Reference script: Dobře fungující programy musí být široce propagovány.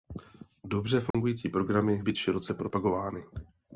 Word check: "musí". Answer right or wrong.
wrong